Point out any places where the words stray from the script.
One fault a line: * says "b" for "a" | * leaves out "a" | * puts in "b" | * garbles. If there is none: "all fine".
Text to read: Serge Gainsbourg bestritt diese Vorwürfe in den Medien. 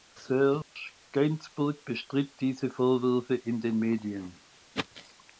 all fine